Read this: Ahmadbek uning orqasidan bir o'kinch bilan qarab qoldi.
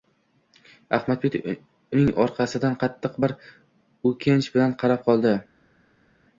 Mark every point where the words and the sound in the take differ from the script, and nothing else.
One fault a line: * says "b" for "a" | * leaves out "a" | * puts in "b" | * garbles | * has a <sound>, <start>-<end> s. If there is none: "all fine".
* puts in "qattiq"